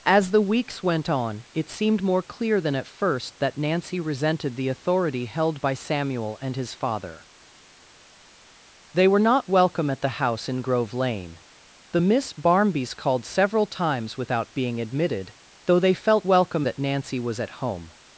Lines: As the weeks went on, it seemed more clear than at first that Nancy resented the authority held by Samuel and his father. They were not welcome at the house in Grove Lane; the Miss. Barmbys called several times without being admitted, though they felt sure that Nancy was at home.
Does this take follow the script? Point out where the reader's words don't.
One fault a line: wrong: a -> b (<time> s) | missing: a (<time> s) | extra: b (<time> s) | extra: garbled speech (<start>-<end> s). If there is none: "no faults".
wrong: sure -> welcome (16.3 s)